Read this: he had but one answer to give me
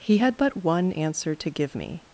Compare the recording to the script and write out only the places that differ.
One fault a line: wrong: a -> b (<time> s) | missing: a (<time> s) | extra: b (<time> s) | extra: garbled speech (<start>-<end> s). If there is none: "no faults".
no faults